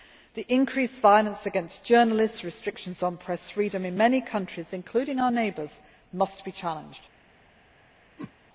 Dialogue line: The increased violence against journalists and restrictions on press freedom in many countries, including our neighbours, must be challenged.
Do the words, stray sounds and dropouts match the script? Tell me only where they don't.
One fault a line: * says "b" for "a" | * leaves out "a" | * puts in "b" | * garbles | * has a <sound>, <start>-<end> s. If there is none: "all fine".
* has a whoosh, 8.2-8.3 s